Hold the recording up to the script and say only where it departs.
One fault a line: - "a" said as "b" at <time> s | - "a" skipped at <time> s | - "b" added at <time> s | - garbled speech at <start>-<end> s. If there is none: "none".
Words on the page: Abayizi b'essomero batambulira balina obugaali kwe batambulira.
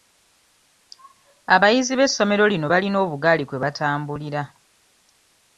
- "batambulira" said as "lino" at 2.5 s